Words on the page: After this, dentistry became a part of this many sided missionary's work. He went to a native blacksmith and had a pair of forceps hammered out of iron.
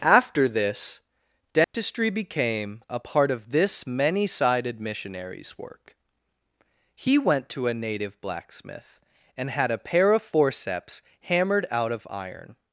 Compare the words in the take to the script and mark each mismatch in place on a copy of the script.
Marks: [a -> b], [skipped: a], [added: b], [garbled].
After this, dentistry became a part of this many sided missionary's work. He went to a native blacksmith and had a pair of forceps hammered out of iron.